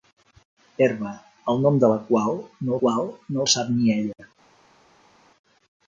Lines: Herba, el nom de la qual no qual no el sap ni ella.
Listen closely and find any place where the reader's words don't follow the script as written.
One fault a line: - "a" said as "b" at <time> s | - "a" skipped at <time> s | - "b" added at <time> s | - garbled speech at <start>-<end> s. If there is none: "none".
none